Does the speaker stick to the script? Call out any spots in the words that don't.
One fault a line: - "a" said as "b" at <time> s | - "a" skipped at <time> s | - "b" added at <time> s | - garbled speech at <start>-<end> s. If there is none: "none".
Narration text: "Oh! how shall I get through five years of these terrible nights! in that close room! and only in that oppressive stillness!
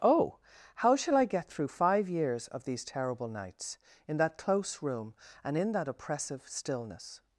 - "only" skipped at 5.6 s